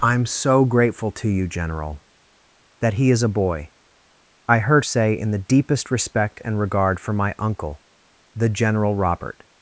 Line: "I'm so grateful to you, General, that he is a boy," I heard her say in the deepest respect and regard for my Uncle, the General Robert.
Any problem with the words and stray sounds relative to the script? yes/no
yes